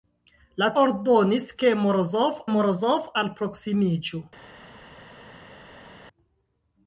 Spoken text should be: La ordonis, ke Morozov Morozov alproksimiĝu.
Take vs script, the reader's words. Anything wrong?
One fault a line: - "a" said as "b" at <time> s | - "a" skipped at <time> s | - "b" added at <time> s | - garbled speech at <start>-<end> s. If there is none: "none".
none